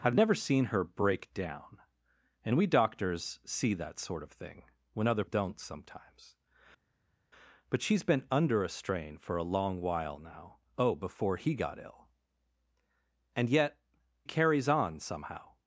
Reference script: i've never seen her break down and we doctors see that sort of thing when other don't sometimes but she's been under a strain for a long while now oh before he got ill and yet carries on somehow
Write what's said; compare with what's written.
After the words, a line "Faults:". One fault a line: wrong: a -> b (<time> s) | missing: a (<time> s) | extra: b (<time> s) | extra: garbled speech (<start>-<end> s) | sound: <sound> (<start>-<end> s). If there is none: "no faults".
i've never seen her break down and we doctors see that sort of thing when other don't sometimes but she's been under a strain for a long while now oh before he got ill and yet carries on somehow
Faults:
no faults